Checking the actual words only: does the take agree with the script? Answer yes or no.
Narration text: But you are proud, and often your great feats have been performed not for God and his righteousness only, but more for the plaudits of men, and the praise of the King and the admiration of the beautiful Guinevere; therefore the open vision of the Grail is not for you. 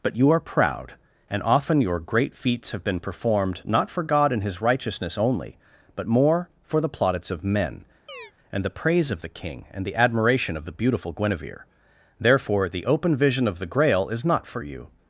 yes